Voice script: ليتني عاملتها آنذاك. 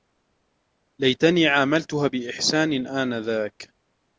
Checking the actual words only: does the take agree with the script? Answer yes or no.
no